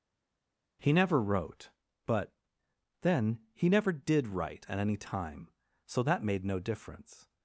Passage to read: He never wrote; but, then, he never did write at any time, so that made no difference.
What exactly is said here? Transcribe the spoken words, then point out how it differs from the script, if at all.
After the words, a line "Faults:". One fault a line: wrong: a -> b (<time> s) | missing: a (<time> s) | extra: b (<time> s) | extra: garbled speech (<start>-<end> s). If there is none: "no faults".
He never wrote; but, then, he never did write at any time, so that made no difference.
Faults:
no faults